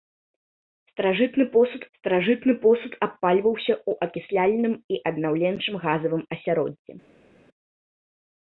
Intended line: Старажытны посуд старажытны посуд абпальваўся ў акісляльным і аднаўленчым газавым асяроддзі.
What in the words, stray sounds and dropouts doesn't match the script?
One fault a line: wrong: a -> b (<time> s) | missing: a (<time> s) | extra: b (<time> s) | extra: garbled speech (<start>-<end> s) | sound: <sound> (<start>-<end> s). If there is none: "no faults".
no faults